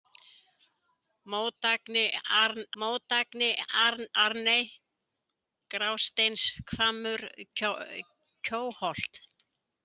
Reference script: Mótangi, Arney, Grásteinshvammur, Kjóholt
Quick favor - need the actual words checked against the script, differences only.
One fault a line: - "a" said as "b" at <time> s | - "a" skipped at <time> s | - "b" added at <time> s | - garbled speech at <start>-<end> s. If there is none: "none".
- "mótangi" added at 2.8 s